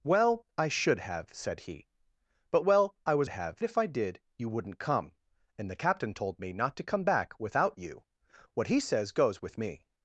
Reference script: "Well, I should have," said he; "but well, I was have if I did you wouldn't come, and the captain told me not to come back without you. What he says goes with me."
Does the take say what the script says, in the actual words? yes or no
yes